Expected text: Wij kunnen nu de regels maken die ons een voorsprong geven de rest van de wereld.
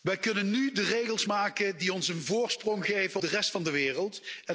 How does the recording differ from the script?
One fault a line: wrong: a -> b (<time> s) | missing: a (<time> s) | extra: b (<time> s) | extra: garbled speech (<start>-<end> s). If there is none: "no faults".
no faults